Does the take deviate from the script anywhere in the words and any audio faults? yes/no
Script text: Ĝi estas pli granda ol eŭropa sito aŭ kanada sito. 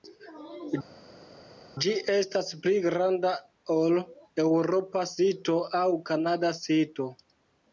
no